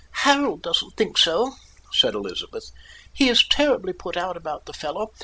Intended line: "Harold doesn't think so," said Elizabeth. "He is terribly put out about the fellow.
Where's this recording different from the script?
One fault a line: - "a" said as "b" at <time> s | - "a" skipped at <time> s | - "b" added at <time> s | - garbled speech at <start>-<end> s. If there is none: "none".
none